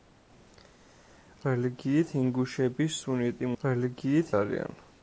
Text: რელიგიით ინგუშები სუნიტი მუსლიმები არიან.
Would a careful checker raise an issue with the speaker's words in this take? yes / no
yes